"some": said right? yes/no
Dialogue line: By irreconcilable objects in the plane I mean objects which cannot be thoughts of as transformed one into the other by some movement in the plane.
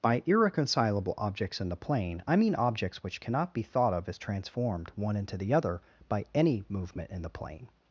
no